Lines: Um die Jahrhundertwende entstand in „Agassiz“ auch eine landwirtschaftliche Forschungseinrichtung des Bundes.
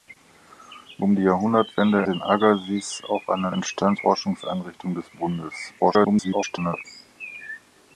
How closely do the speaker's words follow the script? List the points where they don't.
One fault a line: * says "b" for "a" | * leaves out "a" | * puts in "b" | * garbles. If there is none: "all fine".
* leaves out "entstand"
* says "entstand" for "landwirtschaftliche"
* garbles